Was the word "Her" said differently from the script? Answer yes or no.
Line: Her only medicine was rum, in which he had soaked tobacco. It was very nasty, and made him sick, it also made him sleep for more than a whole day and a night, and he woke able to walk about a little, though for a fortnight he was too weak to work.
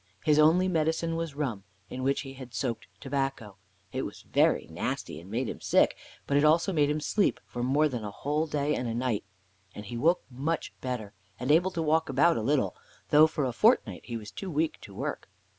yes